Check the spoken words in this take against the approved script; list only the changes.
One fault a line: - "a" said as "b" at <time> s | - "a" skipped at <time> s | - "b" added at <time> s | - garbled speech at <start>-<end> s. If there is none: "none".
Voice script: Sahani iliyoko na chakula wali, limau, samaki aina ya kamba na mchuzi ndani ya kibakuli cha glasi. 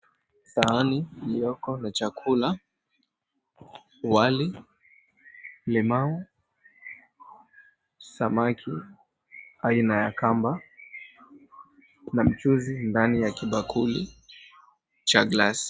none